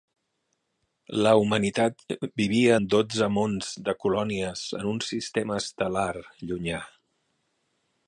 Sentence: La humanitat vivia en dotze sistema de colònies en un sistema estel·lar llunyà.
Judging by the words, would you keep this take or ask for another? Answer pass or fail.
fail